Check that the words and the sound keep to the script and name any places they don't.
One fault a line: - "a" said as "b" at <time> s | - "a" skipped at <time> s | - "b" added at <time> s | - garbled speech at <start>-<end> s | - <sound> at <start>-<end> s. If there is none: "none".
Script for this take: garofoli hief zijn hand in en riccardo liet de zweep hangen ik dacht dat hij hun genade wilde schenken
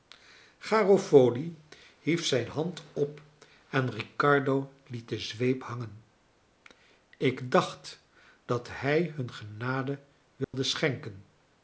- "in" said as "op" at 2.9 s
- dropout at 10.4-10.5 s